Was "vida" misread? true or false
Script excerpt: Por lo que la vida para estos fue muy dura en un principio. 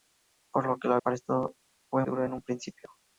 true